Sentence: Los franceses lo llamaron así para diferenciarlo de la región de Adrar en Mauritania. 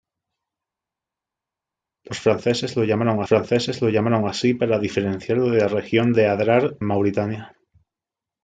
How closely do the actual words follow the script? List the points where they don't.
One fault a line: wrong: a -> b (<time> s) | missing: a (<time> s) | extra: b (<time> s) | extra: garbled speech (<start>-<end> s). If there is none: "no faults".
extra: franceses lo llamaron (3.2 s)
missing: en (6.8 s)